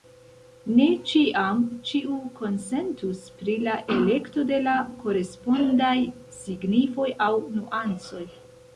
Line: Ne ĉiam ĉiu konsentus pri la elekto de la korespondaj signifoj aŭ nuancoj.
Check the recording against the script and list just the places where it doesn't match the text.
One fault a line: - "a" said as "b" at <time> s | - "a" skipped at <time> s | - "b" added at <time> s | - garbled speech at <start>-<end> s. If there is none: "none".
none